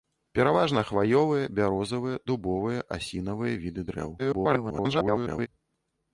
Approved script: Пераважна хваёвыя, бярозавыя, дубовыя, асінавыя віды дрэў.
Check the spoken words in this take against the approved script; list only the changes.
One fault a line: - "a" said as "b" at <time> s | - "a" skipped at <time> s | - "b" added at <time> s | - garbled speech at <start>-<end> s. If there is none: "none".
- garbled speech at 4.2-5.5 s